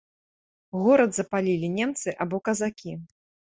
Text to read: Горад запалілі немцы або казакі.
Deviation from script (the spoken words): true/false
false